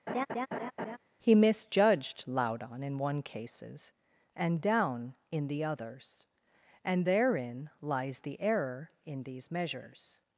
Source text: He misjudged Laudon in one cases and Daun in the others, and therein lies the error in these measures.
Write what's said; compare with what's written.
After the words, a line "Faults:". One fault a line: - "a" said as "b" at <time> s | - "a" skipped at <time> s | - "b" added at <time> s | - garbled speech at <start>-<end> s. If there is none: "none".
He misjudged Laudon in one cases and Daun in the others, and therein lies the error in these measures.
Faults:
none